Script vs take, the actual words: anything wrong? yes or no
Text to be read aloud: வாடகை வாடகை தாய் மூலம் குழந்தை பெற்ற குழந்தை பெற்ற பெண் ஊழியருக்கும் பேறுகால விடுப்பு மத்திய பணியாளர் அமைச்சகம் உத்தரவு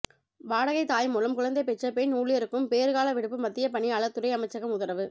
yes